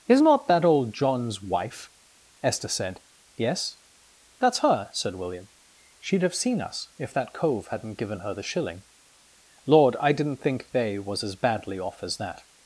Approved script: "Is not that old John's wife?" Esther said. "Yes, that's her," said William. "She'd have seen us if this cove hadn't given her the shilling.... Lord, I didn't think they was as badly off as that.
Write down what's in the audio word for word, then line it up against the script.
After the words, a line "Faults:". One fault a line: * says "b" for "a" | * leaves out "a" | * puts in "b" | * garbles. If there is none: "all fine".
"Is not that old John's wife?" Esther said. "Yes, that's her," said William. "She'd have seen us if that cove hadn't given her the shilling.... Lord, I didn't think they was as badly off as that.
Faults:
* says "that" for "this"